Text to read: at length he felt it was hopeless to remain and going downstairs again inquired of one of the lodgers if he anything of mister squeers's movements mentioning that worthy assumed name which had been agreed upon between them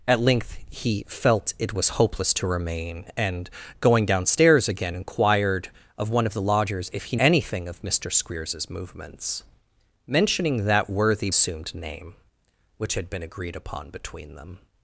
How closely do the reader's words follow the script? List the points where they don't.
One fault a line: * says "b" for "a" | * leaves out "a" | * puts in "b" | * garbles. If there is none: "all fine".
all fine